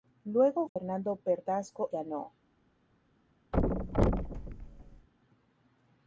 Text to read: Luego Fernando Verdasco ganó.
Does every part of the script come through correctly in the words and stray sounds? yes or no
no